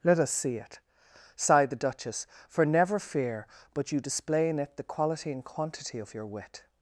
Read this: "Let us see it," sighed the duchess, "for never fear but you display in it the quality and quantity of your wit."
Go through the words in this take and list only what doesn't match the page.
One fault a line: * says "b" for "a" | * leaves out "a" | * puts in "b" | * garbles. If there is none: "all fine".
all fine